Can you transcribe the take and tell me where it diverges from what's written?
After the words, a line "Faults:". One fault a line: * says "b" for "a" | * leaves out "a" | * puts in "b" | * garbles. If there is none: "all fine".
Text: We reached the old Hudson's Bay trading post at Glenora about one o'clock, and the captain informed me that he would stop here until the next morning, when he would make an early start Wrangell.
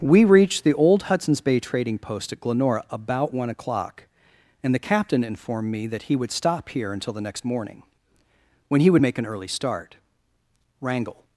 We reached the old Hudson's Bay trading post at Glenora about one o'clock, and the captain informed me that he would stop here until the next morning, when he would make an early start Wrangell.
Faults:
all fine